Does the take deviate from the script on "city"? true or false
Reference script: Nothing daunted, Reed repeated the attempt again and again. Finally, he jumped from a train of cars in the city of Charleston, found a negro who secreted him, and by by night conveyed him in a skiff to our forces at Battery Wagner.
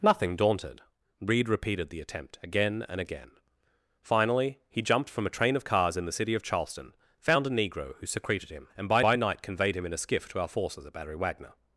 false